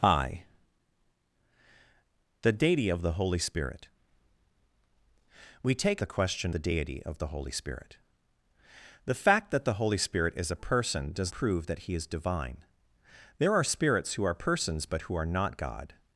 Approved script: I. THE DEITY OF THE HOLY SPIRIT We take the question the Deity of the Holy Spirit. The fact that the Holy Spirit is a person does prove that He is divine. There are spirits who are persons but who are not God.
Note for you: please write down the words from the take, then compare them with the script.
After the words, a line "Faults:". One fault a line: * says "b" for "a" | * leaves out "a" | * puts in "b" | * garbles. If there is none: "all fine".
I. THE DEITY OF THE HOLY SPIRIT We take the question the Deity of the Holy Spirit. The fact that the Holy Spirit is a person does prove that He is divine. There are spirits who are persons but who are not God.
Faults:
all fine